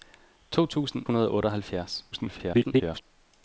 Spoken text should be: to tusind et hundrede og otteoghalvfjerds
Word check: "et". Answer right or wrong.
wrong